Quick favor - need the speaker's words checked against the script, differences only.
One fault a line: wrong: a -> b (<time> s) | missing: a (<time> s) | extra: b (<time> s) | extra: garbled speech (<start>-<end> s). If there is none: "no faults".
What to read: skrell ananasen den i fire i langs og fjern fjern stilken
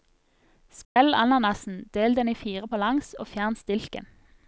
extra: del (1.9 s)
wrong: i -> på (2.7 s)
missing: fjern (3.6 s)